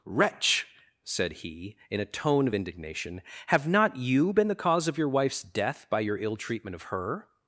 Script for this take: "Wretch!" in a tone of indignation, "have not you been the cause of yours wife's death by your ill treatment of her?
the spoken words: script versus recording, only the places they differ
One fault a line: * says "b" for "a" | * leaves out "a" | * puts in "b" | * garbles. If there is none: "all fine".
* puts in "said he"
* says "your" for "yours"